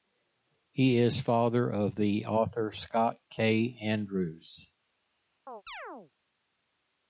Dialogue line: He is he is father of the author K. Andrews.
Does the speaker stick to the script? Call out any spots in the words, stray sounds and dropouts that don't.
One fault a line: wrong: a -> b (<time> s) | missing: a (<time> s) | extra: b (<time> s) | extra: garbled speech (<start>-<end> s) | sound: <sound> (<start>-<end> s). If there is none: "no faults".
missing: he is (1.2 s)
extra: Scott (2.7 s)
sound: chirp (5.5-6.1 s)